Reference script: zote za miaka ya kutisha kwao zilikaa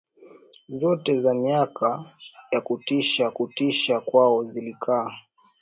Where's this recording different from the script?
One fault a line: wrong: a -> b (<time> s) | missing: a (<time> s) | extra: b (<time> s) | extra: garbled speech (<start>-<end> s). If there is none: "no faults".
extra: kutisha (3.3 s)